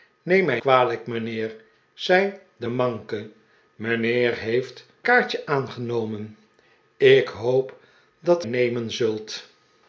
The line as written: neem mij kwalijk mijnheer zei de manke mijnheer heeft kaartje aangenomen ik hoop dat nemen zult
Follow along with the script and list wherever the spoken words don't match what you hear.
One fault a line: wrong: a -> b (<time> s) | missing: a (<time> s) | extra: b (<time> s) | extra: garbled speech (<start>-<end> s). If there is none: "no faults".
no faults